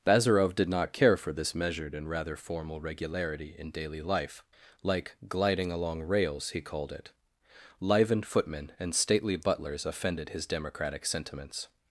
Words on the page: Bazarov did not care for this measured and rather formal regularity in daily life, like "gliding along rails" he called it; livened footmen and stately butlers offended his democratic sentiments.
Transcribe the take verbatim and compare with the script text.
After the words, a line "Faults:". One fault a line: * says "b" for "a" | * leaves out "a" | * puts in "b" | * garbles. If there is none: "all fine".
Bazarov did not care for this measured and rather formal regularity in daily life, like "gliding along rails" he called it; livened footmen and stately butlers offended his democratic sentiments.
Faults:
all fine